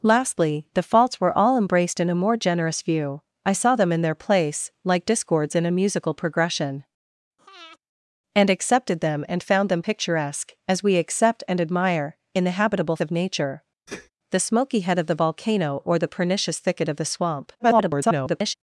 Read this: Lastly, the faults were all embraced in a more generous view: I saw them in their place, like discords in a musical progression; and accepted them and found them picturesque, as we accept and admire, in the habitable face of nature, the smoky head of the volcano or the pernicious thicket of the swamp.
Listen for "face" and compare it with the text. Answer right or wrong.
wrong